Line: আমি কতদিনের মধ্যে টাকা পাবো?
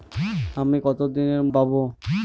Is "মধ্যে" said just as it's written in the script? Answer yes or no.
no